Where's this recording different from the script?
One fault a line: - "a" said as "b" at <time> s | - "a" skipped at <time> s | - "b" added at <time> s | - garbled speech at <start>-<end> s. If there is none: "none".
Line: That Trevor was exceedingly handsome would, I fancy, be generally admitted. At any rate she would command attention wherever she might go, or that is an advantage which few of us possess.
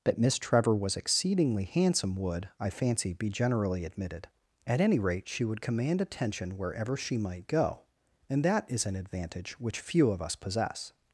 - "Miss" added at 0.2 s
- "or" said as "and" at 8.3 s